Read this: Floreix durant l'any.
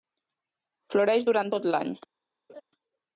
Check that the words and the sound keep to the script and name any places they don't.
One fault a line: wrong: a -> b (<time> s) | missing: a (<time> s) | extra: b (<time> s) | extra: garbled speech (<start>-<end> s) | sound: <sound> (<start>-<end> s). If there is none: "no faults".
extra: tot (1.5 s)
sound: laugh (2.5-2.6 s)